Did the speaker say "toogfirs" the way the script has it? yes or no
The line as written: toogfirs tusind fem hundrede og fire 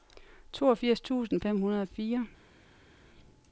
yes